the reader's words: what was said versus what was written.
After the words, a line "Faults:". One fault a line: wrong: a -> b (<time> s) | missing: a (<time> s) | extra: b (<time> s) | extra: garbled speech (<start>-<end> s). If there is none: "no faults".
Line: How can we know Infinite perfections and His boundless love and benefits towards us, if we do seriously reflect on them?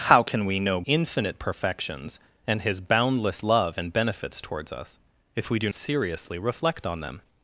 How can we know Infinite perfections and His boundless love and benefits towards us, if we do seriously reflect on them?
Faults:
no faults